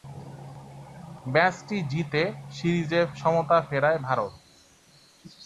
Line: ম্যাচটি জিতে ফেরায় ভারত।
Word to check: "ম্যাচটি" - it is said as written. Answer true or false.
true